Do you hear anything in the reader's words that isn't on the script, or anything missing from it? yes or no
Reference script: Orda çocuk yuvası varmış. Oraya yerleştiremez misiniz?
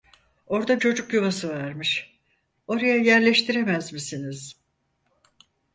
no